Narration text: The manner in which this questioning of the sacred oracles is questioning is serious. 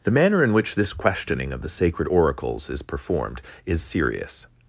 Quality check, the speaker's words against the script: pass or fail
fail